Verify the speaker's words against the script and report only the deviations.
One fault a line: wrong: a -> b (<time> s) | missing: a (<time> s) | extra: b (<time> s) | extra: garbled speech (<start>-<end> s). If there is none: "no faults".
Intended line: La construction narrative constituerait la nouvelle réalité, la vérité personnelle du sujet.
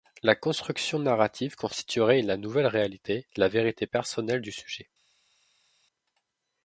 no faults